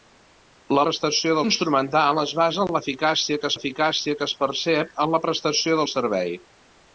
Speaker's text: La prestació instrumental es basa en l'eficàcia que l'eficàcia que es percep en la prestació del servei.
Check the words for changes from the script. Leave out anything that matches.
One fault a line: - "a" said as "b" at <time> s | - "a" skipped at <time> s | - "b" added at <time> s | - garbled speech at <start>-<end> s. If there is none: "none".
none